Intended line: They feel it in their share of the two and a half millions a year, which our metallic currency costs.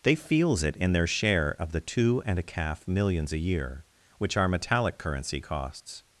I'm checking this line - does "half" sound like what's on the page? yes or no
no